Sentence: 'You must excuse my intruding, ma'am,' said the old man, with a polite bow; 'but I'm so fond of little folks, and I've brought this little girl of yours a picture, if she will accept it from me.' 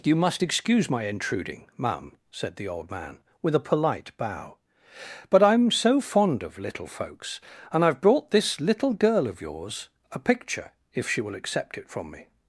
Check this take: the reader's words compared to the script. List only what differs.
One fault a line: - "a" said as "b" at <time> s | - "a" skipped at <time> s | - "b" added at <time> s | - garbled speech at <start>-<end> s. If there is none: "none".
none